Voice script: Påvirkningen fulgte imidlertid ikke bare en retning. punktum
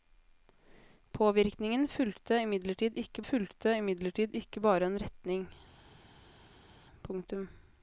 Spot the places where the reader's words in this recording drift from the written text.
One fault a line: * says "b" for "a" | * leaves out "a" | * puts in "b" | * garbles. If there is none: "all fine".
* puts in "fulgte imidlertid ikke"